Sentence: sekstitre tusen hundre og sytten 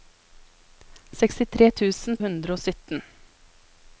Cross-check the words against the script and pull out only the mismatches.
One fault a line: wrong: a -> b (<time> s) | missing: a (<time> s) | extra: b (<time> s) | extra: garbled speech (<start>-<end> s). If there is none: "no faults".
no faults